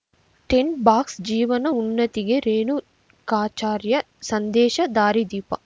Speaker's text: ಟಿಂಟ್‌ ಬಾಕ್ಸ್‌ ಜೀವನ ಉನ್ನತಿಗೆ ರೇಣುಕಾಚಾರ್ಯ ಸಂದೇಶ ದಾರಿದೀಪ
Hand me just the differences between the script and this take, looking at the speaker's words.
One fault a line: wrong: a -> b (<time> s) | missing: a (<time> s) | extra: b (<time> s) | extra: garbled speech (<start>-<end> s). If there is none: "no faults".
no faults